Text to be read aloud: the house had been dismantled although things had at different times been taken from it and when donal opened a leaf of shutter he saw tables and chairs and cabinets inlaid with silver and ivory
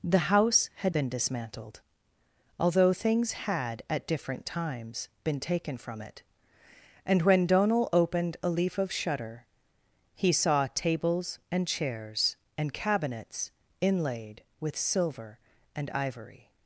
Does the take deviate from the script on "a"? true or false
false